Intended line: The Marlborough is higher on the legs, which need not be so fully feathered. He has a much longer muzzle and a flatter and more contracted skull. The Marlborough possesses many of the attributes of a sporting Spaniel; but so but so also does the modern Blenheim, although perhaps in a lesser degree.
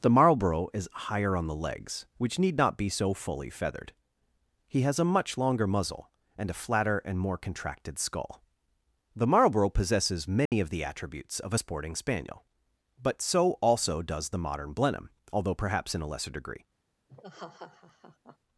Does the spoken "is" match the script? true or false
true